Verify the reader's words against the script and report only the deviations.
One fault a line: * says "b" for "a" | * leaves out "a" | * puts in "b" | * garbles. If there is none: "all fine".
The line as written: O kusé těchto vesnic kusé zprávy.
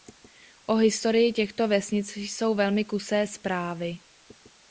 * says "historii" for "kusé"
* puts in "jsou velmi"